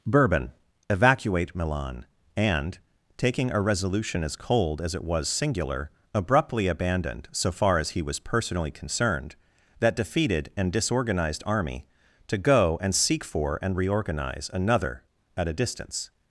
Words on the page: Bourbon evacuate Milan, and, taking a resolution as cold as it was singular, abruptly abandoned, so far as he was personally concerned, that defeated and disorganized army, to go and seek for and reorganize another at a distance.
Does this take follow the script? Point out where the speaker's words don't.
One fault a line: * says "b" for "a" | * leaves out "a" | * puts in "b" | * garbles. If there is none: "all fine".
all fine